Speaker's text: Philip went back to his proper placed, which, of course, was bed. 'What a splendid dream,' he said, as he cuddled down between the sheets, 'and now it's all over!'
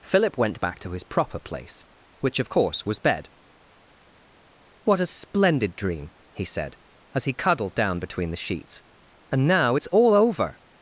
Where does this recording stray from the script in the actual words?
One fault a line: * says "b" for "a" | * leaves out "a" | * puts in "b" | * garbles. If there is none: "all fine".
* says "place" for "placed"